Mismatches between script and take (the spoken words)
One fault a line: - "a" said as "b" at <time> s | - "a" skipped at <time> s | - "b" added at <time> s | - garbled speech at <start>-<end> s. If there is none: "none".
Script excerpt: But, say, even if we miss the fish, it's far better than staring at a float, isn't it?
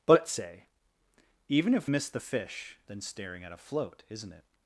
- "we" skipped at 1.9 s
- "it's far better" skipped at 2.8 s